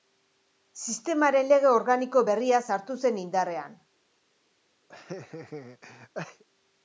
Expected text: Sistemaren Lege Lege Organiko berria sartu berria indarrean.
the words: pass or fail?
fail